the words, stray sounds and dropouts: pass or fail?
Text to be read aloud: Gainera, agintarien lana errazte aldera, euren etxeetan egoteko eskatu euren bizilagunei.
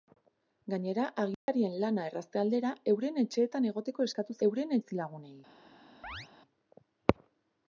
fail